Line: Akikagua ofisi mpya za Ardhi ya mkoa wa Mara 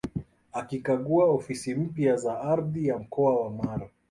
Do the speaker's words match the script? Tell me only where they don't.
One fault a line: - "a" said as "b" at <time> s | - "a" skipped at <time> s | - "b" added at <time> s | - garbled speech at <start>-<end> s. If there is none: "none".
none